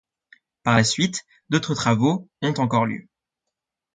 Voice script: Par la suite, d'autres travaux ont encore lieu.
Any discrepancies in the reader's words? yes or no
no